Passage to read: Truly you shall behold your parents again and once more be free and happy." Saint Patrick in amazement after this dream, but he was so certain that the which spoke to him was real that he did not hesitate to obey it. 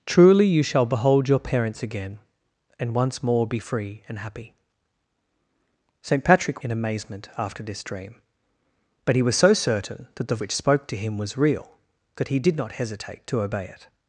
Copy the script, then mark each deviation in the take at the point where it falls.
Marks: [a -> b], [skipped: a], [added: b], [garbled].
Truly you shall behold your parents again and once more be free and happy." Saint Patrick in amazement after this dream, but he was so certain that the which spoke to him was real that he did not hesitate to obey it.